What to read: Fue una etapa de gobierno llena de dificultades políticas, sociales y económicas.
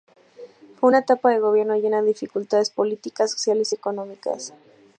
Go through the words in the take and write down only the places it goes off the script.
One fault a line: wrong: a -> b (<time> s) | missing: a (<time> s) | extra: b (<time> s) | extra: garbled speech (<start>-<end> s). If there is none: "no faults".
no faults